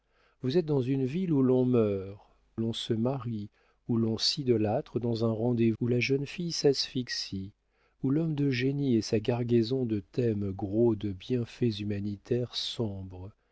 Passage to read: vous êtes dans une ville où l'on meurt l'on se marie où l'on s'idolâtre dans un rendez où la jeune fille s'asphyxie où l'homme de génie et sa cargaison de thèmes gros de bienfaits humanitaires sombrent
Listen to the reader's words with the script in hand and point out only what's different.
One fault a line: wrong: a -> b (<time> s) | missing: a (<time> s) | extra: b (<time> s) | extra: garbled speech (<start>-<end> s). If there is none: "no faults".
no faults